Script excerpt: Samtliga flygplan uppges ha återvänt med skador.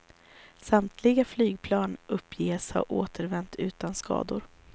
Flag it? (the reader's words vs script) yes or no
yes